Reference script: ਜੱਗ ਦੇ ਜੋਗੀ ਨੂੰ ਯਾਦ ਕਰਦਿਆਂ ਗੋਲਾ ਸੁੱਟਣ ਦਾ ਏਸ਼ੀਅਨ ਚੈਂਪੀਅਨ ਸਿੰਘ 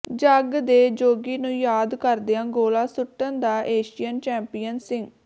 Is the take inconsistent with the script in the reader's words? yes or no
no